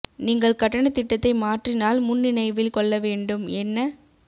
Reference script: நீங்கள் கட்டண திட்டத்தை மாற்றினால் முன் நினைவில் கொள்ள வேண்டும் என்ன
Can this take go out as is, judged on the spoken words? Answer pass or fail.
pass